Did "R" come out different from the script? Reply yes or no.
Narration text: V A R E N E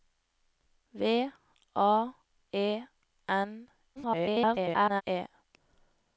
yes